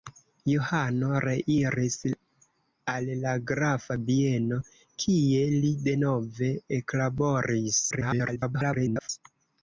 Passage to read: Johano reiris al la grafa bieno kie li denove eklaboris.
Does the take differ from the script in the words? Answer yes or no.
yes